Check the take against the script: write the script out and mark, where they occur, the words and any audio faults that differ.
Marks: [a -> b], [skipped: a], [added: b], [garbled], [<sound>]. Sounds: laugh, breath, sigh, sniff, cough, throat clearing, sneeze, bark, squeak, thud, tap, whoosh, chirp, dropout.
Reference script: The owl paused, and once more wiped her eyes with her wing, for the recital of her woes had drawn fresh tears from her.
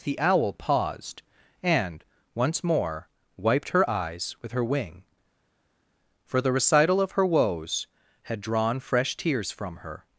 The owl paused, and once more wiped her eyes with her wing, for the recital of her woes had drawn fresh tears from her.